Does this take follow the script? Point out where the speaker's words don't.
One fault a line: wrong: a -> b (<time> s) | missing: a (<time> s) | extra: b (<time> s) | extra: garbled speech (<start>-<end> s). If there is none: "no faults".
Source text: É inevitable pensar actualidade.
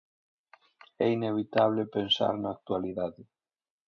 extra: na (2.4 s)